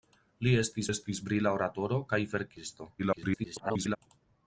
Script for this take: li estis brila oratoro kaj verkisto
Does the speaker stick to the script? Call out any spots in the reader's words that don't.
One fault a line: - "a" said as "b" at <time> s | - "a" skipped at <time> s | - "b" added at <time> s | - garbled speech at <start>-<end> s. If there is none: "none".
- "estis" added at 0.9 s
- garbled speech at 3.0-4.0 s